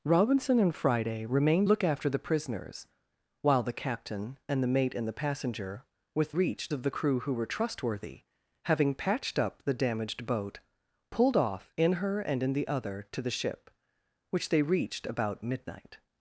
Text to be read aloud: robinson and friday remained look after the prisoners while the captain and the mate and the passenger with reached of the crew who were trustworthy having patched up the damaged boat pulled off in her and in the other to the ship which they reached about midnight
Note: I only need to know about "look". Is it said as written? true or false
true